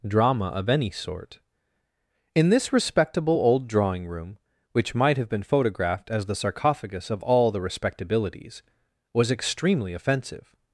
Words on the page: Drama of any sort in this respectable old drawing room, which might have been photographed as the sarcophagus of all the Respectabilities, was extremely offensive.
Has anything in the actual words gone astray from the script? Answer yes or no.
no